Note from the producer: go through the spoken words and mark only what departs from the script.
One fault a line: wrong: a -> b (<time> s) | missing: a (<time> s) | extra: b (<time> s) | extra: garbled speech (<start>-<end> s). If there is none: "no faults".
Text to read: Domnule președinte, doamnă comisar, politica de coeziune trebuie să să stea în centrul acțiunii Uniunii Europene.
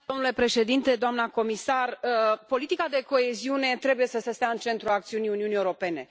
no faults